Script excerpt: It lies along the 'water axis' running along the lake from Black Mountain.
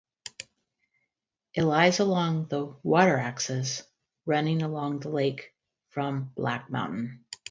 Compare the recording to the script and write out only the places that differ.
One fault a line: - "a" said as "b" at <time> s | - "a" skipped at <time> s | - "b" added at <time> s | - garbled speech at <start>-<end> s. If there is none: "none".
none